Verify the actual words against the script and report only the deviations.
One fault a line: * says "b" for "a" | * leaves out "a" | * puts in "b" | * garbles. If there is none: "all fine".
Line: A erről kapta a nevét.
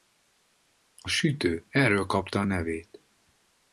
* puts in "sütő"